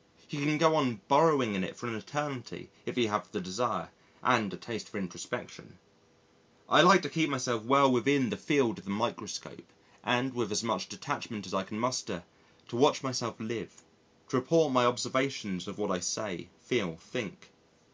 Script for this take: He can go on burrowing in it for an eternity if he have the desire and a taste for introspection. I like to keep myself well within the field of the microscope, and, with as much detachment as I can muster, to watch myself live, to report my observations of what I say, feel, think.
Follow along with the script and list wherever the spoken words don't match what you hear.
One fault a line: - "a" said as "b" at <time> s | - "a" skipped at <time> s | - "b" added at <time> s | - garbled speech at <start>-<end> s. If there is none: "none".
none